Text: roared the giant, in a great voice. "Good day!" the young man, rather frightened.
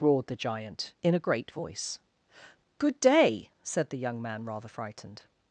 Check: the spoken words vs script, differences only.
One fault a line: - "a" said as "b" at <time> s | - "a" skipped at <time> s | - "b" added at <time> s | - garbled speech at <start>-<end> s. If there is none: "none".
- "said" added at 3.6 s